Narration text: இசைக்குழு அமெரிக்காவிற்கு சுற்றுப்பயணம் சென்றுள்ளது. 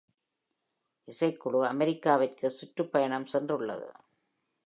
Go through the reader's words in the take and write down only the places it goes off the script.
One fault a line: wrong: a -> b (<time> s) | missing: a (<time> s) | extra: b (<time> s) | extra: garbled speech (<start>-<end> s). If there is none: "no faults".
no faults